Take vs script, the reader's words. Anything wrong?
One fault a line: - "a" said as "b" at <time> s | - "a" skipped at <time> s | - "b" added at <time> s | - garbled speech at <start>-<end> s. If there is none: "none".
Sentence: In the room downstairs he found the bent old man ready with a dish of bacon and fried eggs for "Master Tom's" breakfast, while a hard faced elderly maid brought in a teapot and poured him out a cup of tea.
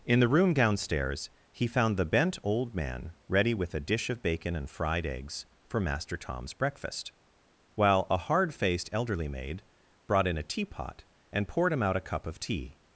none